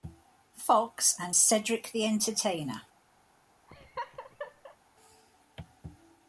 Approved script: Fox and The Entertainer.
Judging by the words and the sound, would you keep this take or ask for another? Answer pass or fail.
fail